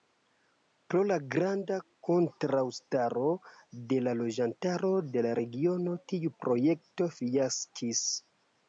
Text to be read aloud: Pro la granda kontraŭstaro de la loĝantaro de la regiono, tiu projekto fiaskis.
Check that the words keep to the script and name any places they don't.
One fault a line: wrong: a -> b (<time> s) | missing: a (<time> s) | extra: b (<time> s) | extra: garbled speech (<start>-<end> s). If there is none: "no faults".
no faults